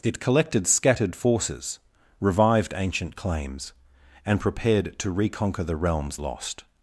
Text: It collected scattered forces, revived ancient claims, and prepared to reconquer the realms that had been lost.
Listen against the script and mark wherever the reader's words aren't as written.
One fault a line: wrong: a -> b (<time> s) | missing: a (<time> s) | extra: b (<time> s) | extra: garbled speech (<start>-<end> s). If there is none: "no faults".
missing: that had been (6.2 s)